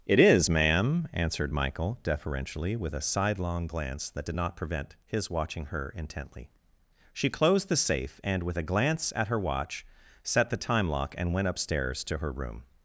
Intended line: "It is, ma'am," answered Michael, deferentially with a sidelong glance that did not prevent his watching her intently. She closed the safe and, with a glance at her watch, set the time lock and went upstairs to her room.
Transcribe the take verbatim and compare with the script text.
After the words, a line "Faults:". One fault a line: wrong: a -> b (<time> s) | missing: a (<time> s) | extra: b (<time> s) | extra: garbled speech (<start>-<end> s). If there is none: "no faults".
"It is, ma'am," answered Michael, deferentially with a sidelong glance that did not prevent his watching her intently. She closed the safe and, with a glance at her watch, set the time lock and went upstairs to her room.
Faults:
no faults